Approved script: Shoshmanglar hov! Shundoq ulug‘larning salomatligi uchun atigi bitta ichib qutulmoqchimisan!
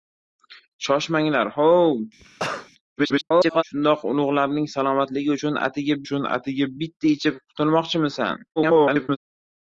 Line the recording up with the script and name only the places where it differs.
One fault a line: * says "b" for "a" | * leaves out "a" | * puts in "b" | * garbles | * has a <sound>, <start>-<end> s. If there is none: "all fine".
* has a cough, 2.2-2.7 s
* garbles
* puts in "uchun atigi"
* garbles